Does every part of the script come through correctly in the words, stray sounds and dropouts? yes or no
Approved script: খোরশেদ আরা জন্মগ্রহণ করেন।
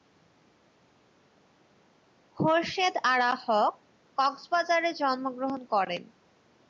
no